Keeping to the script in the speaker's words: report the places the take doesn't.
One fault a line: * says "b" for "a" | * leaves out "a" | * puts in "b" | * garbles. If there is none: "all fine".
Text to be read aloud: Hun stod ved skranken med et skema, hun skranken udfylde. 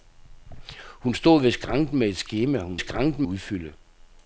all fine